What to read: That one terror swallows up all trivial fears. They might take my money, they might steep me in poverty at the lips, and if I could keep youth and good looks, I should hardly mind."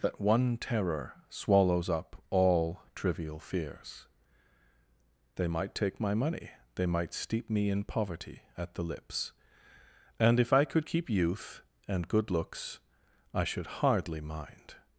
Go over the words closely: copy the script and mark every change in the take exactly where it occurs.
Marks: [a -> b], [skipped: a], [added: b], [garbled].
That one terror swallows up all trivial fears. They might take my money, they might steep me in poverty at the lips, and if I could keep youth and good looks, I should hardly mind."